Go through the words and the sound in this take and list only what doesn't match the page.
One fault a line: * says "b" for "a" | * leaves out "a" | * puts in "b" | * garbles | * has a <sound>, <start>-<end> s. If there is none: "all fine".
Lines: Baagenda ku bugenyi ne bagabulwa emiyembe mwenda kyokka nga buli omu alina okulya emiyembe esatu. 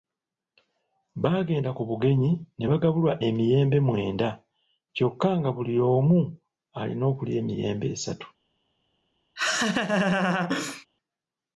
* has a laugh, 9.4-10.9 s